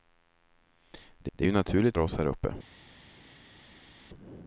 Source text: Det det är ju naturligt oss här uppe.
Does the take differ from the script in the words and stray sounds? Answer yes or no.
no